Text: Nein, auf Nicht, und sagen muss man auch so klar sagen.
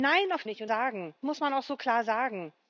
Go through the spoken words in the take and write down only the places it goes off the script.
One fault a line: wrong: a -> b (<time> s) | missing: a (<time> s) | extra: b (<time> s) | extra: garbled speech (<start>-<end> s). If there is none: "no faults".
no faults